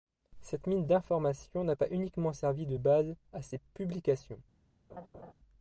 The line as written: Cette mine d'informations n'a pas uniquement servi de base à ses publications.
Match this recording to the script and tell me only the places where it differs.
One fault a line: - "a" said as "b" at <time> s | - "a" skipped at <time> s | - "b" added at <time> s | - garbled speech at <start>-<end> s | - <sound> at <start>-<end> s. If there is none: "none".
- laugh at 4.9-5.3 s